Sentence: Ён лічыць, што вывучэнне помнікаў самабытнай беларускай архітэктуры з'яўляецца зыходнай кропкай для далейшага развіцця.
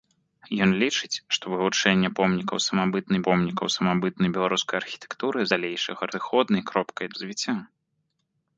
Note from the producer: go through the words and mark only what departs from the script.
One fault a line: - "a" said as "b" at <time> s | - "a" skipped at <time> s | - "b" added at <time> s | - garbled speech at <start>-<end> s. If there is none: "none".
- "помнікаў самабытнай" added at 3.3 s
- "з'яўляецца" said as "далейшага" at 5.5 s
- "для далейшага" skipped at 7.1 s